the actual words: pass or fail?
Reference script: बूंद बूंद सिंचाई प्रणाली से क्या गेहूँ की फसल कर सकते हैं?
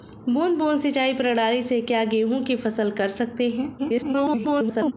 fail